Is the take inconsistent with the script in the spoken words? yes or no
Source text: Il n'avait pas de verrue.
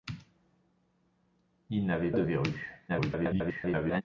yes